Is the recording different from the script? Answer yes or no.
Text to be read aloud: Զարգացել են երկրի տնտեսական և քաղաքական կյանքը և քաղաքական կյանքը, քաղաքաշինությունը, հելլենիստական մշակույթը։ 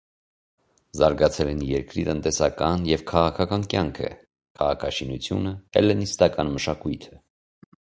yes